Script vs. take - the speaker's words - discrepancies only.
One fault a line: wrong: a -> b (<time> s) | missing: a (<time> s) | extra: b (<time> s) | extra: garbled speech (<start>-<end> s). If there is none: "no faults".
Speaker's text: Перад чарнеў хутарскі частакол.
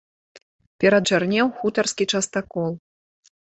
no faults